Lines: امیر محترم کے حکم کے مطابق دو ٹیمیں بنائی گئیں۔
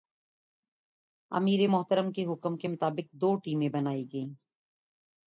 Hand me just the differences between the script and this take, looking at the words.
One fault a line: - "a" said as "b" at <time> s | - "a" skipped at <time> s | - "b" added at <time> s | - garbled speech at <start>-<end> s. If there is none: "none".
none